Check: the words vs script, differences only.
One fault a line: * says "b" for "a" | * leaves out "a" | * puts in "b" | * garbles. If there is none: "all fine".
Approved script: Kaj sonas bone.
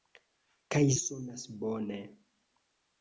all fine